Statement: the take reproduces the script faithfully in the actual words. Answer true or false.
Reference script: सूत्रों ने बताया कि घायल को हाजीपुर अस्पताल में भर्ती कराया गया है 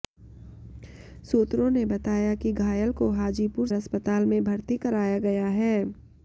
true